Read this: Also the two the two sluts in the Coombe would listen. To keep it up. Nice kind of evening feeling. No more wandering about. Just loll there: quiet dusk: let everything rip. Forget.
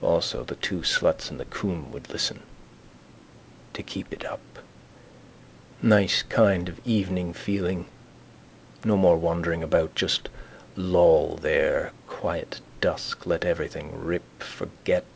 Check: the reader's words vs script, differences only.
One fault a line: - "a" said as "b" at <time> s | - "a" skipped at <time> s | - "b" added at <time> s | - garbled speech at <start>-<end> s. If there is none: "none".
- "the two" skipped at 0.8 s